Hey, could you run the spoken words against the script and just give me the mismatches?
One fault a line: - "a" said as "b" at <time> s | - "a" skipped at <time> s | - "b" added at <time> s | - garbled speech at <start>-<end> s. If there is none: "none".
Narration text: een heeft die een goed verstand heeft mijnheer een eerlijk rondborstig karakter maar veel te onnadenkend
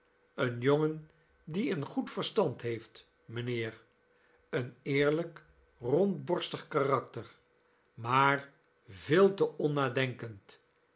- "heeft" said as "jongen" at 0.6 s